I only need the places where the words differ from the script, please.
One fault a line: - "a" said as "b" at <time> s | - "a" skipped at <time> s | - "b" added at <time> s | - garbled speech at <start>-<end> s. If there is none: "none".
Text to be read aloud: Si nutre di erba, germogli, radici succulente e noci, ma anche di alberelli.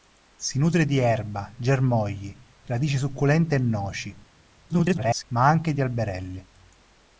- garbled speech at 4.7-5.2 s